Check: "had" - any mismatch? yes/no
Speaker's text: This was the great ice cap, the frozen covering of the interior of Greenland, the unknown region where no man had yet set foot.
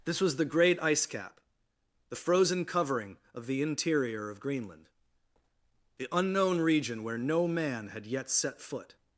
no